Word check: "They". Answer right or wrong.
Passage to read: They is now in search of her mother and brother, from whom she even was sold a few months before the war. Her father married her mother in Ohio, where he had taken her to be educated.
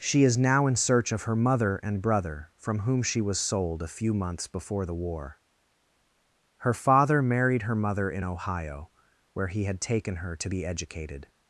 wrong